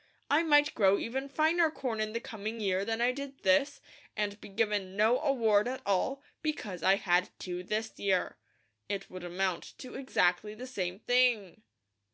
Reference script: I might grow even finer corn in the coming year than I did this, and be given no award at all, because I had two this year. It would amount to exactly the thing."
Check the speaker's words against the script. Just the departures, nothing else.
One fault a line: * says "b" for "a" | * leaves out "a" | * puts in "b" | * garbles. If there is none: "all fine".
* puts in "same"